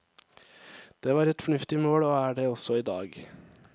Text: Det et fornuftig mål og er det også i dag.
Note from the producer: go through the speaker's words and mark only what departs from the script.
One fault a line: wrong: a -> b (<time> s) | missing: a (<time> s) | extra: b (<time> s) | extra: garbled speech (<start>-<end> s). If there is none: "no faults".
extra: var (1.1 s)